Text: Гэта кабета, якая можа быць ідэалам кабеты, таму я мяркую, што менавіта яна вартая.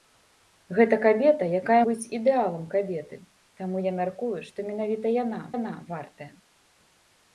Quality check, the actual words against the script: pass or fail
fail